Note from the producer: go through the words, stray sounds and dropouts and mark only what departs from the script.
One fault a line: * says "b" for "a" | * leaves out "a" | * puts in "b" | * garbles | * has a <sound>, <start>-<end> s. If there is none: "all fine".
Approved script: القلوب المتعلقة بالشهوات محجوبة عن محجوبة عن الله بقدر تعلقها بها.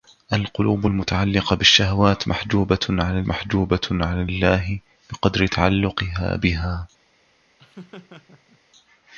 * has a laugh, 7.6-8.6 s